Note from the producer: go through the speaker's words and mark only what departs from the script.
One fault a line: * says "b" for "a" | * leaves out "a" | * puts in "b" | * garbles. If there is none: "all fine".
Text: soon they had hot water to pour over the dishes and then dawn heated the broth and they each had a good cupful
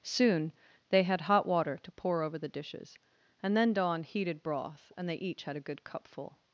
* leaves out "the"